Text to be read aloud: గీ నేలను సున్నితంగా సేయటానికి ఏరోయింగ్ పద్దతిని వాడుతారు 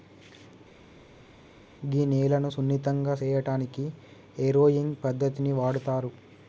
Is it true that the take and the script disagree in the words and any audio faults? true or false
false